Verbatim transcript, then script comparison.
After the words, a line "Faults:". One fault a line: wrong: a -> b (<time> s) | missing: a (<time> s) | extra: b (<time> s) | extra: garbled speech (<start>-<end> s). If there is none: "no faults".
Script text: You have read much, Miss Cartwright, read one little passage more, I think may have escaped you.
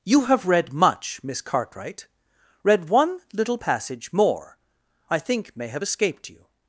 You have read much, Miss Cartwright, read one little passage more, I think may have escaped you.
Faults:
no faults